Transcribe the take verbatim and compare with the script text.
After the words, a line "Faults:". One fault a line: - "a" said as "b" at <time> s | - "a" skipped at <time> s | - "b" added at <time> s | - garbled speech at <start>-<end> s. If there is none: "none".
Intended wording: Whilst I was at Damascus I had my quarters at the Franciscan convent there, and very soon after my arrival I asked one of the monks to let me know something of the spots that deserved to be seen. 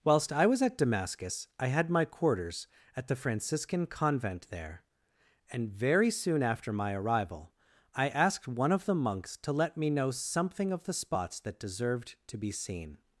Whilst I was at Damascus I had my quarters at the Franciscan convent there, and very soon after my arrival I asked one of the monks to let me know something of the spots that deserved to be seen.
Faults:
none